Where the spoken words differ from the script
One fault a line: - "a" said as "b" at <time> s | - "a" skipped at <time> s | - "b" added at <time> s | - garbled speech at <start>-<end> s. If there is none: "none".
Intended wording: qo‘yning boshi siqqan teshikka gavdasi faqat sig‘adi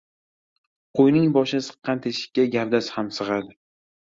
- "faqat" said as "ham" at 3.0 s